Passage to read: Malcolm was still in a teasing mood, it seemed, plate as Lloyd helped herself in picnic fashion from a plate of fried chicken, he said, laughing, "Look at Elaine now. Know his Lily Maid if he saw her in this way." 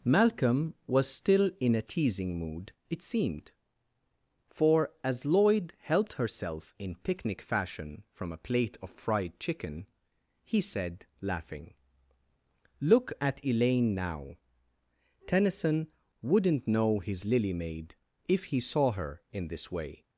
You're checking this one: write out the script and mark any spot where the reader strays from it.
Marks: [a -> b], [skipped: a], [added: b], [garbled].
Malcolm was still in a teasing mood, it seemed, [plate -> for] as Lloyd helped herself in picnic fashion from a plate of fried chicken, he said, laughing, "Look at Elaine now. [added: Tennyson wouldn't] Know his Lily Maid if he saw her in this way."